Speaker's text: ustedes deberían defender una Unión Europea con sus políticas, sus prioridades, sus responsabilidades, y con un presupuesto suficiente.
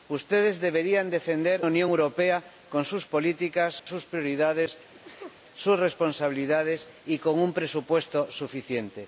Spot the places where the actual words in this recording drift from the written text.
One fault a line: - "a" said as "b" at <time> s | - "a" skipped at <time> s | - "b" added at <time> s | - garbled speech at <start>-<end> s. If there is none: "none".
- "una" skipped at 1.6 s